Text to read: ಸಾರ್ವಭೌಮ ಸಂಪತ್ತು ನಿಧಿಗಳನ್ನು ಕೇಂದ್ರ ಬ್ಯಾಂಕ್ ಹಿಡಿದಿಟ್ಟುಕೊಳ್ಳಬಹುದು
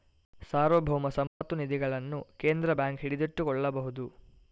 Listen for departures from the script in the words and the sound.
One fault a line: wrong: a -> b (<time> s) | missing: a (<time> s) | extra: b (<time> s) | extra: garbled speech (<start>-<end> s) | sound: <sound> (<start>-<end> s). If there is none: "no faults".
sound: dropout (1.3-1.4 s)